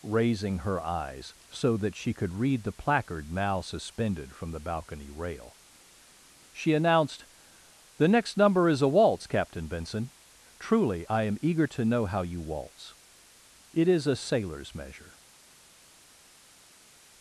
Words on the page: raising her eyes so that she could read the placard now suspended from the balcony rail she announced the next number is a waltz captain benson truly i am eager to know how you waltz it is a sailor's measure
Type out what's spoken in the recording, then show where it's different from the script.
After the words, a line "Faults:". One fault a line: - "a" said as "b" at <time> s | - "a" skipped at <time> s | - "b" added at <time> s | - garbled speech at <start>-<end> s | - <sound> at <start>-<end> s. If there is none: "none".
raising her eyes so that she could read the placard now suspended from the balcony rail she announced the next number is a waltz captain benson truly i am eager to know how you waltz it is a sailor's measure
Faults:
none